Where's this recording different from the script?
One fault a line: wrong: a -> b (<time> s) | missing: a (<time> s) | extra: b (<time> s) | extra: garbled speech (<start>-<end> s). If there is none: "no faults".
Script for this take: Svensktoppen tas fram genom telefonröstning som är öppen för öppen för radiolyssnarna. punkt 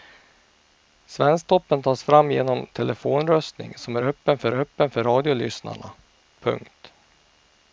no faults